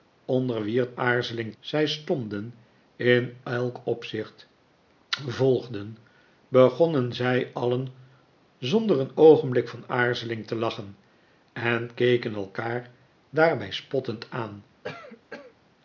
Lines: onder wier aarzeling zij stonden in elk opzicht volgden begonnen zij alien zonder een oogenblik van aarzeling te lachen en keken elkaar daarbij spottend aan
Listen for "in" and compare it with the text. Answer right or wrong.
right